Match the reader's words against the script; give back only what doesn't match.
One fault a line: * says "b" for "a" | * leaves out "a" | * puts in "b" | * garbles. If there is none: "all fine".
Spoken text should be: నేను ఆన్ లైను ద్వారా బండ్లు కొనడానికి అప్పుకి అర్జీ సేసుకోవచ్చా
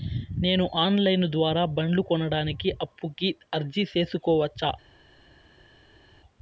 all fine